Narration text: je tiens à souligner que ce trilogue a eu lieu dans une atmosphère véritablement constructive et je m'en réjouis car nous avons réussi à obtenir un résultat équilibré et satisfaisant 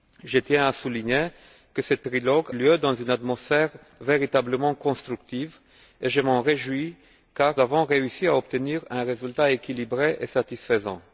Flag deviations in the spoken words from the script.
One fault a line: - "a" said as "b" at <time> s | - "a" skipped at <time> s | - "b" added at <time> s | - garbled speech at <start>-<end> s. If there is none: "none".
- "a eu" skipped at 2.5 s
- "nous" skipped at 7.5 s